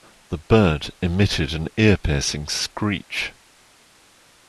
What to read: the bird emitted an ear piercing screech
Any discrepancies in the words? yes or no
no